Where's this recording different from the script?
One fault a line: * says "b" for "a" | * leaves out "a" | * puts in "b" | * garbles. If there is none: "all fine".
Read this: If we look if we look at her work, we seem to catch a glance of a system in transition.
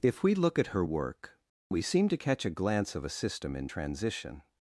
* leaves out "if we look"